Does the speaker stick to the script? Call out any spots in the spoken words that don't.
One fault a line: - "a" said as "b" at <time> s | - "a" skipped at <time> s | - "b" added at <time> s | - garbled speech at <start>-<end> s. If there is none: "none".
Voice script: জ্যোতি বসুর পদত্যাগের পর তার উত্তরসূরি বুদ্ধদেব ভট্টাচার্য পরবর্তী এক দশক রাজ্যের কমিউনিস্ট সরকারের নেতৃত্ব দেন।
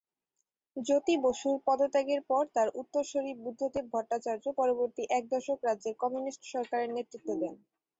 none